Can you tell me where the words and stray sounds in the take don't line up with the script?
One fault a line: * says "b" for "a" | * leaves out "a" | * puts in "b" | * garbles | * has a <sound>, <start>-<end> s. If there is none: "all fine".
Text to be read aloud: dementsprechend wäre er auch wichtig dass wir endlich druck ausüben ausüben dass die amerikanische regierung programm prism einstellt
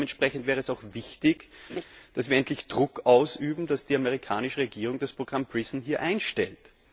* says "es" for "er"
* has a laugh, 1.7-1.8 s
* leaves out "ausüben"
* puts in "das"